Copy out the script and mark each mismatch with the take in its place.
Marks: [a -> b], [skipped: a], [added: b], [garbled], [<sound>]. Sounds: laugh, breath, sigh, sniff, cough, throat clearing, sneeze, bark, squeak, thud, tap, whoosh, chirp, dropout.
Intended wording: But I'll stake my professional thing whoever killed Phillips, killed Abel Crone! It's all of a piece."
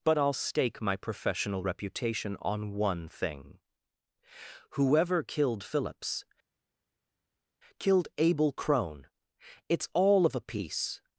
But I'll stake my professional [added: reputation on one] thing whoever killed Phillips, killed Abel Crone! It's all of a piece."